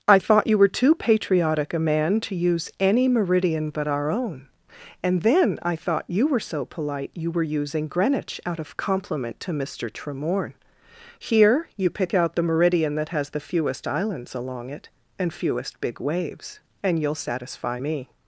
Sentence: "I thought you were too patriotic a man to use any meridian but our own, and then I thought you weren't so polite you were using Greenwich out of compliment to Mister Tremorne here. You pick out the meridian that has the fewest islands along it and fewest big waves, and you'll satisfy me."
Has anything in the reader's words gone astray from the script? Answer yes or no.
yes